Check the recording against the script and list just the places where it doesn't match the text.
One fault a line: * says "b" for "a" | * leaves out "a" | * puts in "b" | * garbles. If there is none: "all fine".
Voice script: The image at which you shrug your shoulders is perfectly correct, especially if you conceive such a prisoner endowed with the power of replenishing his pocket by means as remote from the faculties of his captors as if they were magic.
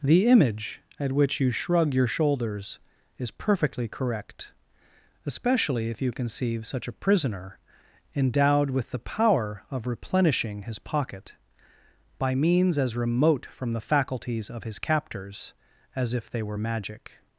all fine